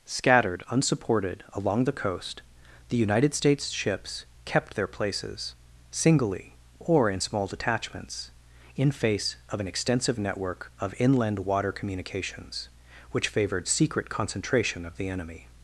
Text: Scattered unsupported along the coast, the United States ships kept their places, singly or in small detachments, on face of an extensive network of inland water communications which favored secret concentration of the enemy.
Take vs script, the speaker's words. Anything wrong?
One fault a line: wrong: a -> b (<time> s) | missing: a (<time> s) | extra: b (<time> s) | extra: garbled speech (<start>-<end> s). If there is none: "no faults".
wrong: on -> in (8.8 s)